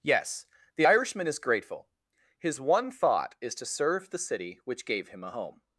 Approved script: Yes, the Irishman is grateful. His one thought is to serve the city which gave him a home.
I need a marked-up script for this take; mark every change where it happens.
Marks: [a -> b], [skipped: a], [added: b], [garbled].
Yes, the Irishman is grateful. His one thought is to serve the city which gave him a home.